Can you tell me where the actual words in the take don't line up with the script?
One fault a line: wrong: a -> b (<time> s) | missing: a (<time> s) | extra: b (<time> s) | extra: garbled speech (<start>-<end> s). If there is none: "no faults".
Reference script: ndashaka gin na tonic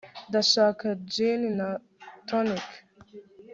no faults